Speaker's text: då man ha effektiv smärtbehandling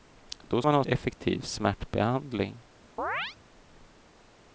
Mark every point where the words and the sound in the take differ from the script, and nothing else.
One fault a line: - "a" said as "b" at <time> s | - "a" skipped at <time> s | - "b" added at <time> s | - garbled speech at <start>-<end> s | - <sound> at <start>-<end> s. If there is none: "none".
- chirp at 3.0-3.4 s